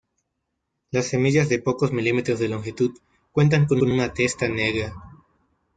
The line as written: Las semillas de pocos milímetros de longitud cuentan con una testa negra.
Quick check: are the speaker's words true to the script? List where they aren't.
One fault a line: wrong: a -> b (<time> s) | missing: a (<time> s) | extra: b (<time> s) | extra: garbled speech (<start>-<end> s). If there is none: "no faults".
extra: con (3.8 s)